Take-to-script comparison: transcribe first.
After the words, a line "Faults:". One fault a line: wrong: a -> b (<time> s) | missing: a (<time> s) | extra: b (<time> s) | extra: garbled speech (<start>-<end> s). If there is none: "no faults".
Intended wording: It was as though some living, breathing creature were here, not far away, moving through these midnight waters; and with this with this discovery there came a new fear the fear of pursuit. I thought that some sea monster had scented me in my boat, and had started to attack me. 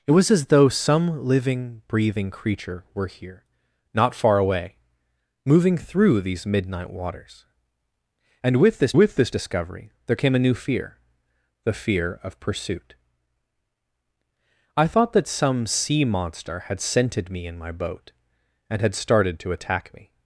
It was as though some living, breathing creature were here, not far away, moving through these midnight waters; and with this with this discovery there came a new fear the fear of pursuit. I thought that some sea monster had scented me in my boat, and had started to attack me.
Faults:
no faults